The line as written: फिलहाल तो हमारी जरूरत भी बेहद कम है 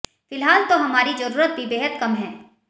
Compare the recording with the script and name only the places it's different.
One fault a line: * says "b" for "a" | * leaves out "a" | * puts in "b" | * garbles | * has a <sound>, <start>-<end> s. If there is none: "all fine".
all fine